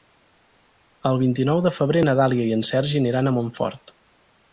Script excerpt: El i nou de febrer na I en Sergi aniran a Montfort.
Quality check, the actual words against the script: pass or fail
fail